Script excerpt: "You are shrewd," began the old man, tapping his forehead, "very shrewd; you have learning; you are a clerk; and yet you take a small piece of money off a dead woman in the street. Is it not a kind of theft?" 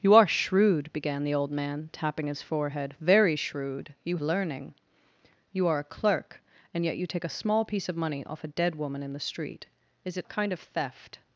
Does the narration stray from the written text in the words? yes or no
yes